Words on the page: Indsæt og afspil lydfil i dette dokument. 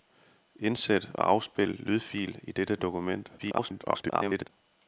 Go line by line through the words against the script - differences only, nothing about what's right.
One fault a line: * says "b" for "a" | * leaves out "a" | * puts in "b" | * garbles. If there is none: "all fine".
* garbles